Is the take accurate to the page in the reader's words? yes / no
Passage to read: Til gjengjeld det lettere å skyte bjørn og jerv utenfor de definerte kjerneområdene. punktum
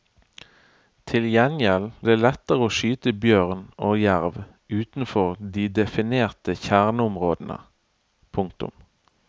yes